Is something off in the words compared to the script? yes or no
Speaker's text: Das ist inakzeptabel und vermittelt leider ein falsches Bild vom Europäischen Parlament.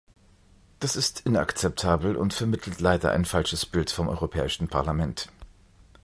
no